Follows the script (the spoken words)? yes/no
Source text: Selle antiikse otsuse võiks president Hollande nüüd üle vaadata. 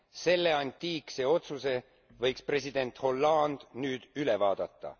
yes